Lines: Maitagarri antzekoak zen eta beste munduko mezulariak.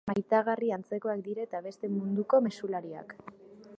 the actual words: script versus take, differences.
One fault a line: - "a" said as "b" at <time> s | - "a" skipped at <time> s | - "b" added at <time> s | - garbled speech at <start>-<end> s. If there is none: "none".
- "zen" said as "dira" at 1.3 s